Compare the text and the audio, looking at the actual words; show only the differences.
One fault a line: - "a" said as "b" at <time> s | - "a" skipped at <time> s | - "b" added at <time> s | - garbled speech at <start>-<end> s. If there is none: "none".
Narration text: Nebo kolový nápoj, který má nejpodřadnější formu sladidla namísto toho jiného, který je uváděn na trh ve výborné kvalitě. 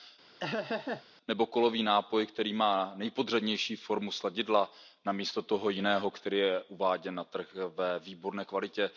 none